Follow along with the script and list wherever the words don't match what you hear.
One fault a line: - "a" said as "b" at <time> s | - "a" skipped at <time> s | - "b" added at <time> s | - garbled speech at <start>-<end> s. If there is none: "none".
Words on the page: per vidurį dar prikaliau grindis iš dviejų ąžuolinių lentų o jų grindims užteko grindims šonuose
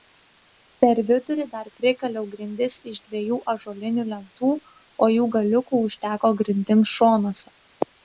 - "grindims" said as "galiukų" at 5.4 s